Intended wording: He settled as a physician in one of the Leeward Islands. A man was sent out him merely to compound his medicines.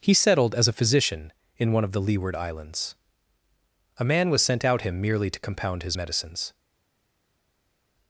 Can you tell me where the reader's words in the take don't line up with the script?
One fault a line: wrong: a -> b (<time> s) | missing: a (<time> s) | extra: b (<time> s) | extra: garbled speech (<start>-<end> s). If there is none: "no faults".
no faults